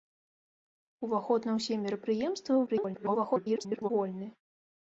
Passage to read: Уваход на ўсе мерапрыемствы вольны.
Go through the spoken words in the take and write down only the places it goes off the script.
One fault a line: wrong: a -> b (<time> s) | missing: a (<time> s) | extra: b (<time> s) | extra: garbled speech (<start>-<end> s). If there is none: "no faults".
extra: garbled speech (2.7-3.9 s)